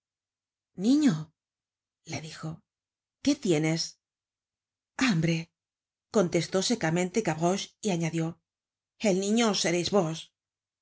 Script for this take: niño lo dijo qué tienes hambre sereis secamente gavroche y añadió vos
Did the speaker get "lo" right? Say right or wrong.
wrong